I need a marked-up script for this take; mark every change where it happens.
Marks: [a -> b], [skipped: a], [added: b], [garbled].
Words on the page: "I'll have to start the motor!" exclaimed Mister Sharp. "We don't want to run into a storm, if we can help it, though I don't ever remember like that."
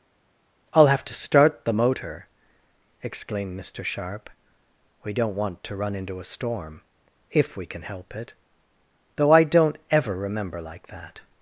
"I'll have to start the motor!" exclaimed Mister Sharp. "We don't want to run into a storm, if we can help it, though I don't ever remember like that."